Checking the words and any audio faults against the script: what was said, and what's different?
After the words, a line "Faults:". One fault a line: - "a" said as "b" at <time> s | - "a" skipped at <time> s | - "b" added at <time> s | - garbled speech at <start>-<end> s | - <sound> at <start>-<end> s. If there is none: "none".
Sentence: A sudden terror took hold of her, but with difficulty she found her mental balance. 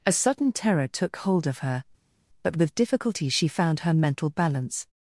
A sudden terror took hold of her, but with difficulty she found her mental balance.
Faults:
none